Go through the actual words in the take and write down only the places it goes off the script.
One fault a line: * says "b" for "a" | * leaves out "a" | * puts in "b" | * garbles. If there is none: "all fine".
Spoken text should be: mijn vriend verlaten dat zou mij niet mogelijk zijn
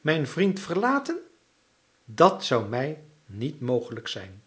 all fine